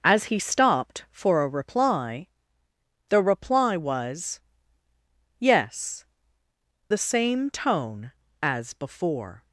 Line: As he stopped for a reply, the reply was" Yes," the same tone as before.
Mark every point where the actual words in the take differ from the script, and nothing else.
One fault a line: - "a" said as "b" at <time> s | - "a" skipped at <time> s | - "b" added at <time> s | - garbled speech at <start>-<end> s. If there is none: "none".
none